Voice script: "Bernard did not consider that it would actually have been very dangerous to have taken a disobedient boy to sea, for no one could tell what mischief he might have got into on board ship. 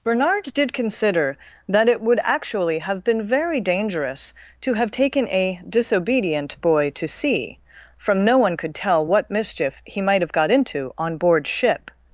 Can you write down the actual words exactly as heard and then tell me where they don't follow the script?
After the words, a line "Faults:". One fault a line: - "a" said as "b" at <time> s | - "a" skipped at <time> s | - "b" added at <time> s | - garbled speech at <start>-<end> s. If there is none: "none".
"Bernard did consider that it would actually have been very dangerous to have taken a disobedient boy to sea, from no one could tell what mischief he might have got into on board ship.
Faults:
- "not" skipped at 0.7 s
- "for" said as "from" at 8.0 s